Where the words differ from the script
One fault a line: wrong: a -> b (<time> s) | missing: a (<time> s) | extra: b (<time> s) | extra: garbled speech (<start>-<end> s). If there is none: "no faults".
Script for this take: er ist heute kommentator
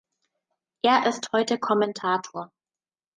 no faults